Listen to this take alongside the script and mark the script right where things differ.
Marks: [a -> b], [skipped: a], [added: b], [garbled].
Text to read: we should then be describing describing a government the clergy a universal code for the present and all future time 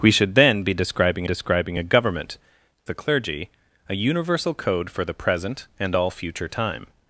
we should then be describing describing a government the clergy a universal code for the present and all future time